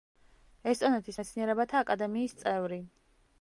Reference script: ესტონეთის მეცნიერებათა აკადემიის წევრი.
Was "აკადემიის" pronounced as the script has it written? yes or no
yes